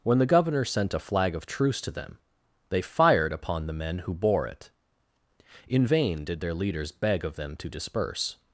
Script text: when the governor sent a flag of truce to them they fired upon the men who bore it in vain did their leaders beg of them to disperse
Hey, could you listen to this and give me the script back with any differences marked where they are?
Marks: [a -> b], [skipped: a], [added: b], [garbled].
when the governor sent a flag of truce to them they fired upon the men who bore it in vain did their leaders beg of them to disperse